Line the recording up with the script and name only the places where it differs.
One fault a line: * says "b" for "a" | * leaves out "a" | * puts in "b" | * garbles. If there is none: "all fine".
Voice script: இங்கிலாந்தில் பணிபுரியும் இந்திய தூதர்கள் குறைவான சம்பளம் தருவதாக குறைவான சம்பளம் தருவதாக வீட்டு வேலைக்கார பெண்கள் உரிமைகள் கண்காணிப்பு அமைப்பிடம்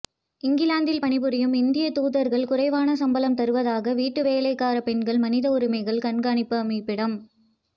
* leaves out "குறைவான சம்பளம் தருவதாக"
* puts in "மனித"